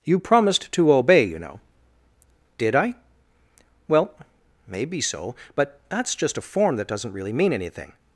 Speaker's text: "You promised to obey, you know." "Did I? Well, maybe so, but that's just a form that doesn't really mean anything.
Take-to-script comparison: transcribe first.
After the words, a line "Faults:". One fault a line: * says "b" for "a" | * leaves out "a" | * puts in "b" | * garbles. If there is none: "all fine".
"You promised to obey, you know." "Did I? Well, maybe so, but that's just a form that doesn't really mean anything.
Faults:
all fine